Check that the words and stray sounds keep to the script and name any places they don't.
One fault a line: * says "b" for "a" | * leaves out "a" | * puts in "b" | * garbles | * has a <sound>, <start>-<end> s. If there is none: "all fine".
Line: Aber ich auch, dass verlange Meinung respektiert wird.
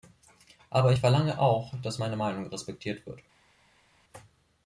* puts in "verlange"
* says "meine" for "verlange"